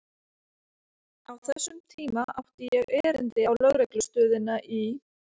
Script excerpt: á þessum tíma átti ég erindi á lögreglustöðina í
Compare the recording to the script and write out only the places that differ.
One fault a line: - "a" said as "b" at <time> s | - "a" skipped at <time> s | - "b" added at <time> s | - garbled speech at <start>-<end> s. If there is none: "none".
none